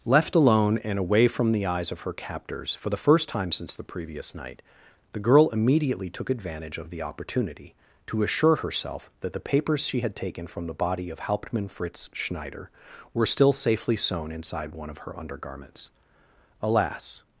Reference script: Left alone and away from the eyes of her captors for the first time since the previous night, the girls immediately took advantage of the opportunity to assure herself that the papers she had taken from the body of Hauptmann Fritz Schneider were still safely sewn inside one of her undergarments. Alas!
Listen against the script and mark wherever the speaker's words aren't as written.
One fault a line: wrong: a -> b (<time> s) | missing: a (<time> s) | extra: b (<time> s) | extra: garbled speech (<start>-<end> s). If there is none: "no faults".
wrong: girls -> girl (5.2 s)